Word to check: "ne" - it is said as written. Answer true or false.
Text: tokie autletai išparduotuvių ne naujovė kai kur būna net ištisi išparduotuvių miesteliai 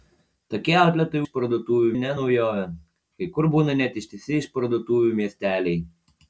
true